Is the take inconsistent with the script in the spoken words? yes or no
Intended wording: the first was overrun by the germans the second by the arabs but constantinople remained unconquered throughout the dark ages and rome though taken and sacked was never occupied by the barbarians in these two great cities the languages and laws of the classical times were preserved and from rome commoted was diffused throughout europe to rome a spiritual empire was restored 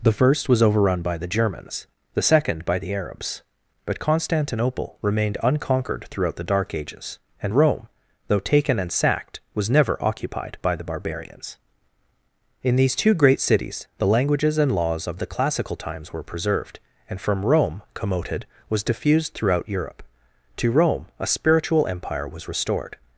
no